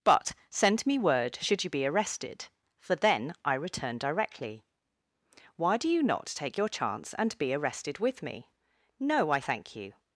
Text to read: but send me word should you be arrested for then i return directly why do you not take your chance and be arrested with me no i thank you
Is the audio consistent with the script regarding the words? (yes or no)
yes